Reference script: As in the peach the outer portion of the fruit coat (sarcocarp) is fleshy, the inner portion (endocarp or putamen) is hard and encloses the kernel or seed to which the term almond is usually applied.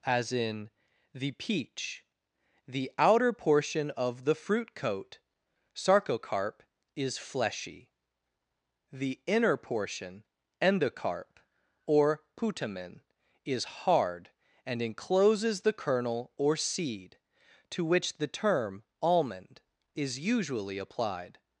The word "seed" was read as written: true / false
true